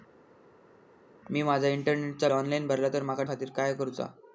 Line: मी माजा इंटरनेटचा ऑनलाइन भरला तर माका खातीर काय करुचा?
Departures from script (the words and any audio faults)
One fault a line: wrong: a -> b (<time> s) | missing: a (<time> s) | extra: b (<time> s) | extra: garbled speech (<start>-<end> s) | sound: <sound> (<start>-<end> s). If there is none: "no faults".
no faults